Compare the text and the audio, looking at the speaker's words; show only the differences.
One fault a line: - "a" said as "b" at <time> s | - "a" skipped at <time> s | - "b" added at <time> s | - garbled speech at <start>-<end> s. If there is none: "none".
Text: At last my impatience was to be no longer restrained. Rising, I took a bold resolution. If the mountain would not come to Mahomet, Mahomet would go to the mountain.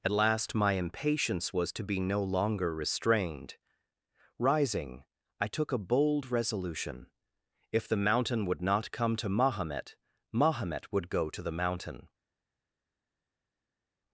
none